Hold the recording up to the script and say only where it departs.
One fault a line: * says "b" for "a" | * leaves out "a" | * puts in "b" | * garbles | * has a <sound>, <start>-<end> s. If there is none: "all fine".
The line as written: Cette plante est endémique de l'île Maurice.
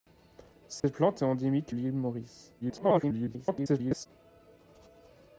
* has a dropout, 0.8-0.8 s
* leaves out "de"
* garbles